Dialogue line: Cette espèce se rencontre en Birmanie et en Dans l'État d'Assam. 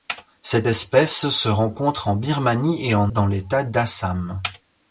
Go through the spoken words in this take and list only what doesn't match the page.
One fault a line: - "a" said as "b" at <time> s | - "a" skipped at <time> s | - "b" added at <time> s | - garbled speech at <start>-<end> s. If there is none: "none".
none